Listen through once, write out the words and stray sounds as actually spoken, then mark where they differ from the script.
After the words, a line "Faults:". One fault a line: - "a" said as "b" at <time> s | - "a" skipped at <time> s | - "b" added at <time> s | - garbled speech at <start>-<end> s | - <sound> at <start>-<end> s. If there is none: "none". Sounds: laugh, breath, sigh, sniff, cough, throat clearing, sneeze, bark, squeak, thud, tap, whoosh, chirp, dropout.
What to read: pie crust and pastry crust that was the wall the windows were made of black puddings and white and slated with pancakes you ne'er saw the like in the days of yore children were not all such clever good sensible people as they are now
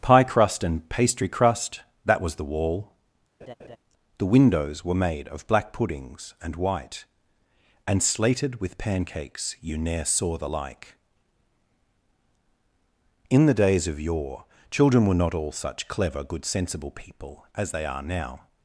pie crust and pastry crust that was the wall the windows were made of black puddings and white and slated with pancakes you ne'er saw the like in the days of yore children were not all such clever good sensible people as they are now
Faults:
- laugh at 3.4-3.8 s